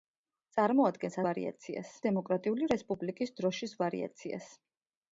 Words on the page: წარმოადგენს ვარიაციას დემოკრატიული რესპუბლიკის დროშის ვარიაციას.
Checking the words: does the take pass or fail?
pass